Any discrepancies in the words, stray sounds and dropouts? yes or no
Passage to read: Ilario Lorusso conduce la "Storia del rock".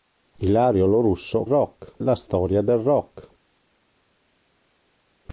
yes